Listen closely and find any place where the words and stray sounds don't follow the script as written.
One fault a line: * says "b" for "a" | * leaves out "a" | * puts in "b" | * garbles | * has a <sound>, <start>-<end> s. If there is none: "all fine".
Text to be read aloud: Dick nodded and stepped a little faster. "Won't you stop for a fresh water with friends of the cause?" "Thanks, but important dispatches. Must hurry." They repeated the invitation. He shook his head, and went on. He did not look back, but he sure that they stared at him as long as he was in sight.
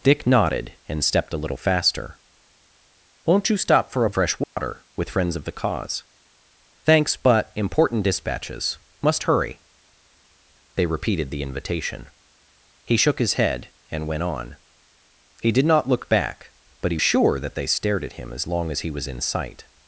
* has a dropout, 4.4-4.6 s